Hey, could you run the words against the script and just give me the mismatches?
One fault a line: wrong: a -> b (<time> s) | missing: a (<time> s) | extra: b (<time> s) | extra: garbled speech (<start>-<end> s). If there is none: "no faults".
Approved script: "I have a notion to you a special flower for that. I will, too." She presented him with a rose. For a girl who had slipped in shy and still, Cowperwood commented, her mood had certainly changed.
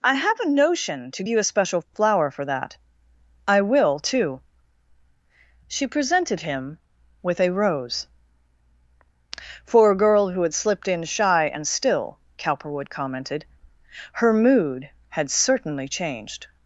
no faults